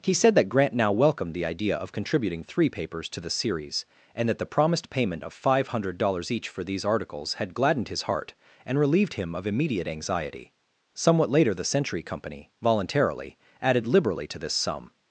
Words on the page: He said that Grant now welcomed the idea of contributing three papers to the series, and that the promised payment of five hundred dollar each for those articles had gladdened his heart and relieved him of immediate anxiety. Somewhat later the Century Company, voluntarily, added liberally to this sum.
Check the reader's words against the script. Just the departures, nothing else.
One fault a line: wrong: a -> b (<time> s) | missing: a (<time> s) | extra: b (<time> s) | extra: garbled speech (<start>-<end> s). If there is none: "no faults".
wrong: dollar -> dollars (6.0 s)
wrong: those -> these (6.6 s)